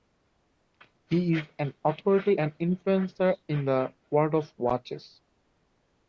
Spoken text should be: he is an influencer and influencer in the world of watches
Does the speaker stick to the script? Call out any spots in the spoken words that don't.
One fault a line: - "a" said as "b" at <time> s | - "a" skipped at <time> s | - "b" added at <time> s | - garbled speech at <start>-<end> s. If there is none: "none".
- "influencer" said as "authority" at 1.8 s